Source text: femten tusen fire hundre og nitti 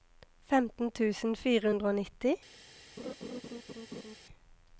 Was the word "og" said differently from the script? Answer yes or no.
no